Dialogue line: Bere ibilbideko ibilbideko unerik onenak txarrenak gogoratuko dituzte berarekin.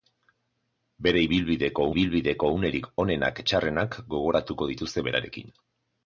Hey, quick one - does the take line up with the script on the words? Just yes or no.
yes